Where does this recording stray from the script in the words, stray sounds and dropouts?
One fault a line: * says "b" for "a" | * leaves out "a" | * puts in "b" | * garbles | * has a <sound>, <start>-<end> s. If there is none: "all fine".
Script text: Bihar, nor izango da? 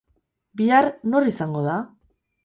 all fine